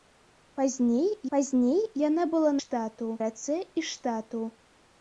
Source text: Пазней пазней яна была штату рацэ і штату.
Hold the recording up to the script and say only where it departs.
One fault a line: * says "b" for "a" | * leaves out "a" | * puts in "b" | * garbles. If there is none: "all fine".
all fine